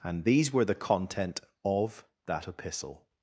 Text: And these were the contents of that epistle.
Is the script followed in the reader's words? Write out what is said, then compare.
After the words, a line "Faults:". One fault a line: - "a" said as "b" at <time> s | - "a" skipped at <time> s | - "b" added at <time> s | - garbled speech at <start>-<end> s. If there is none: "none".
And these were the content of that epistle.
Faults:
- "contents" said as "content" at 0.8 s